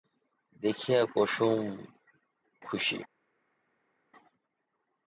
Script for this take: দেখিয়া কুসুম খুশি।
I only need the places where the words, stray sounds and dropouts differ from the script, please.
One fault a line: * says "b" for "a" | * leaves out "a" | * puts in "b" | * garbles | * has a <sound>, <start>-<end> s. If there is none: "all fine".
all fine